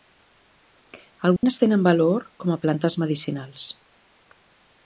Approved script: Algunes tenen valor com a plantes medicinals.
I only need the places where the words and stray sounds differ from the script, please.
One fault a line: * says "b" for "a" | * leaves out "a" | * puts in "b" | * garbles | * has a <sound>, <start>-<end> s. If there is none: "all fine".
* has a dropout, 1.4-1.4 s